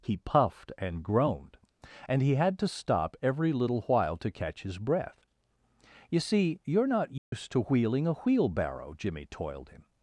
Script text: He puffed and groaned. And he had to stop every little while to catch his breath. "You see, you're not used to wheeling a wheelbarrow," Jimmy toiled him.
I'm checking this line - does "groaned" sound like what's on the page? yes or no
yes